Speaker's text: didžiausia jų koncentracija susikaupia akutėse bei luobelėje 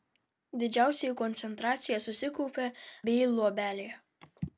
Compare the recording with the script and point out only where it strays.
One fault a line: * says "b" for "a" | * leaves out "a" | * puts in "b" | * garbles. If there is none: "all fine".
* leaves out "akutėse"